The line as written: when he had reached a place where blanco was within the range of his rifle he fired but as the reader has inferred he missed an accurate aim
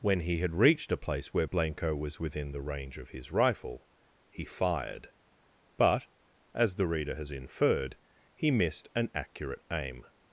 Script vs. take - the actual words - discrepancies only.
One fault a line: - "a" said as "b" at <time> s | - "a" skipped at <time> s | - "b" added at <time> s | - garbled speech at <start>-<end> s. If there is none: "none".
none